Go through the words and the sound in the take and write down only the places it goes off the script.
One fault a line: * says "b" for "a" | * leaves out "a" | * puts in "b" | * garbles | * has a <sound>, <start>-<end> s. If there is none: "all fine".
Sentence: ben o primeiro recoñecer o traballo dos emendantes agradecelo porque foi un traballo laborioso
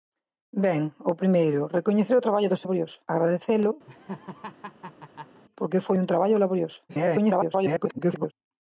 * says "laborioso" for "emendantes"
* has a laugh, 3.9-5.4 s
* garbles